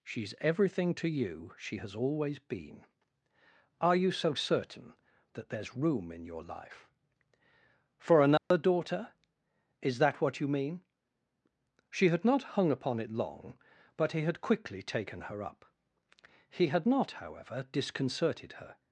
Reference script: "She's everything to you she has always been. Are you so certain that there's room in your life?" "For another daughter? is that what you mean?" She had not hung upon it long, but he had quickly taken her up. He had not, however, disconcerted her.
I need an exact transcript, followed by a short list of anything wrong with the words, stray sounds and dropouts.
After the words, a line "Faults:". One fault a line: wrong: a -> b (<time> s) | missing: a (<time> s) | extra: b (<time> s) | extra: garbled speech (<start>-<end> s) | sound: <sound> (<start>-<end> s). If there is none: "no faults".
"She's everything to you she has always been. Are you so certain that there's room in your life?" "For another daughter? is that what you mean?" She had not hung upon it long, but he had quickly taken her up. He had not, however, disconcerted her.
Faults:
sound: dropout (8.4-8.5 s)